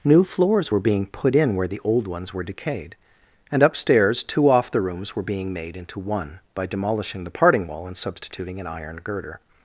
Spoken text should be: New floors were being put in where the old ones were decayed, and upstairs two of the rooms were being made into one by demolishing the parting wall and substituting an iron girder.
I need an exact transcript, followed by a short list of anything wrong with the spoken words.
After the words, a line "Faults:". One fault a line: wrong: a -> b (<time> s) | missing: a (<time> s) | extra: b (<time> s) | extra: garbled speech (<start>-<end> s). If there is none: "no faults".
New floors were being put in where the old ones were decayed, and upstairs two off the rooms were being made into one by demolishing the parting wall and substituting an iron girder.
Faults:
wrong: of -> off (4.5 s)